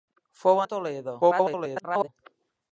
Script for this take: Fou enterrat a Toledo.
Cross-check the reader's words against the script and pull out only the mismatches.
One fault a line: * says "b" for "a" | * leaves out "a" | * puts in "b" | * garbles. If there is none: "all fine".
* leaves out "enterrat"
* garbles